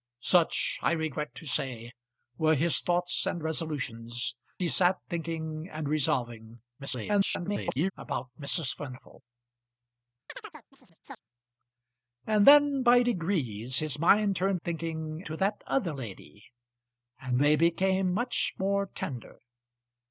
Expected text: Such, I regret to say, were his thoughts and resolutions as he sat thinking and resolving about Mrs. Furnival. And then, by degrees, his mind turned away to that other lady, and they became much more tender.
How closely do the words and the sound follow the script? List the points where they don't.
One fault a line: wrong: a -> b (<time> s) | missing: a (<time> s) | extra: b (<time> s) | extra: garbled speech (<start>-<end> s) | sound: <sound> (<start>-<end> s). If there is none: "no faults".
missing: as (4.3 s)
extra: garbled speech (6.8-7.9 s)
sound: chirp (10.3-11.2 s)
wrong: away -> thinking (14.6 s)